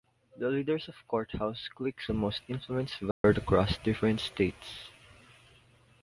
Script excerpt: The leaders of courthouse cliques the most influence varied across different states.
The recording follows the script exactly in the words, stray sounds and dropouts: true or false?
false